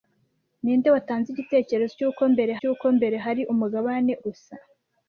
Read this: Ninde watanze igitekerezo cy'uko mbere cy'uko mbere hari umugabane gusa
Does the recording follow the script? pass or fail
pass